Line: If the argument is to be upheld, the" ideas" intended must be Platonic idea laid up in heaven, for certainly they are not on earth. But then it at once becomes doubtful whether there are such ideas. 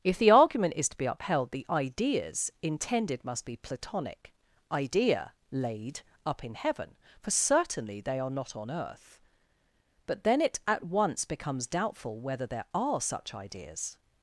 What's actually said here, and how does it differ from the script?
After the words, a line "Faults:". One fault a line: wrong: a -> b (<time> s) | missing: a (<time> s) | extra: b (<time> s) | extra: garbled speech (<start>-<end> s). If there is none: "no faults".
If the argument is to be upheld, the" ideas" intended must be Platonic idea laid up in heaven, for certainly they are not on earth. But then it at once becomes doubtful whether there are such ideas.
Faults:
no faults